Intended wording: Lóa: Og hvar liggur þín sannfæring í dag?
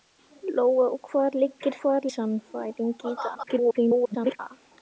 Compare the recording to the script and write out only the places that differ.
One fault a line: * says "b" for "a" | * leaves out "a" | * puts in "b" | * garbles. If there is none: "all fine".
* says "hvar" for "þín"
* garbles